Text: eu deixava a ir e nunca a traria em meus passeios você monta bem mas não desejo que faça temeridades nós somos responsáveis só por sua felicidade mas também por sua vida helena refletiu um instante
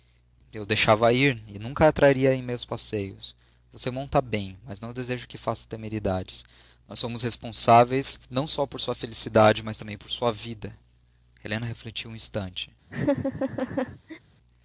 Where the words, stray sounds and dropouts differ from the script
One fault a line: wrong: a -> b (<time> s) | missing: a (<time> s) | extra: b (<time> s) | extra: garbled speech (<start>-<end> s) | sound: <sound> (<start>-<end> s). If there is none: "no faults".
extra: não (8.3 s)
sound: laugh (12.9-14.2 s)